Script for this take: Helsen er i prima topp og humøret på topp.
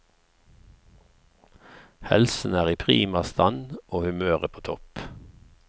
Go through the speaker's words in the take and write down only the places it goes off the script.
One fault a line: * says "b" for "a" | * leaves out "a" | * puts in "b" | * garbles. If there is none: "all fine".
* says "stand" for "topp"